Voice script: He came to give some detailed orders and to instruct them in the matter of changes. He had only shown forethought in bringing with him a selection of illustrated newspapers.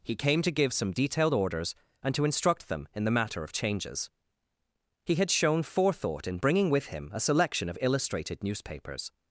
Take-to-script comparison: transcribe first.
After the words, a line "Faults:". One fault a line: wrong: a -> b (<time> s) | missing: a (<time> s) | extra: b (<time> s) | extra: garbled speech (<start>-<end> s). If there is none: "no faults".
He came to give some detailed orders and to instruct them in the matter of changes. He had shown forethought in bringing with him a selection of illustrated newspapers.
Faults:
missing: only (5.3 s)